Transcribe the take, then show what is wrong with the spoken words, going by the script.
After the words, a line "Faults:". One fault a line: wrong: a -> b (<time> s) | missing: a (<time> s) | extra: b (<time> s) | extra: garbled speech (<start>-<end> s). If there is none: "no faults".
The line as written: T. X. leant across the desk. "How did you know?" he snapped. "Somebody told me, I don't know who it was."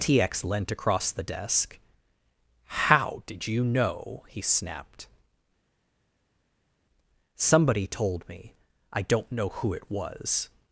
T. X. leant across the desk. "How did you know?" he snapped. "Somebody told me, I don't know who it was."
Faults:
no faults